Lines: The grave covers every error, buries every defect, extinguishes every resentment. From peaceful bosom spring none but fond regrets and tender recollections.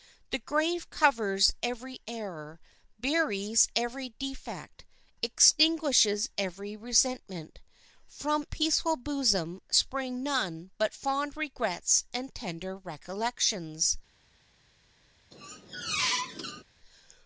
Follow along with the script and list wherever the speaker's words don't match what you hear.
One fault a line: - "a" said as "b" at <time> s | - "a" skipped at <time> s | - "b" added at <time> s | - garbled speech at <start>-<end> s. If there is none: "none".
none